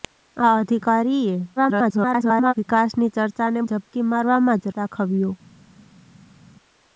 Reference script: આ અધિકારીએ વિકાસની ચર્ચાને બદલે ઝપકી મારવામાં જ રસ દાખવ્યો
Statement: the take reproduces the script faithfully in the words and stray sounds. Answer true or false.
false